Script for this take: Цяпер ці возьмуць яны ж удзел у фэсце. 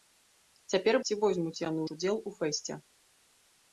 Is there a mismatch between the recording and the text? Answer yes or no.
no